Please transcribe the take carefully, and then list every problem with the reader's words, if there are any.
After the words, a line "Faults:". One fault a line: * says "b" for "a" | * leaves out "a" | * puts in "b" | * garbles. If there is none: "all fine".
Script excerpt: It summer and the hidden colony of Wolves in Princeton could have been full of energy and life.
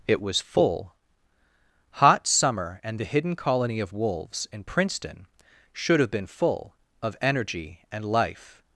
It was full hot summer and the hidden colony of Wolves in Princeton should have been full of energy and life.
Faults:
* puts in "was full hot"
* says "should" for "could"